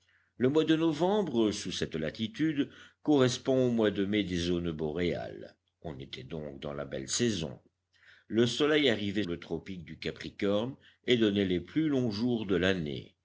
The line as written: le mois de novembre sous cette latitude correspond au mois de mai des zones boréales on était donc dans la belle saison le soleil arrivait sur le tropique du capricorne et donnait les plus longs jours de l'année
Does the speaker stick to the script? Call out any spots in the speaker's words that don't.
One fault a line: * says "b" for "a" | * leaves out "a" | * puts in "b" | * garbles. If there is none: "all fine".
* leaves out "sur"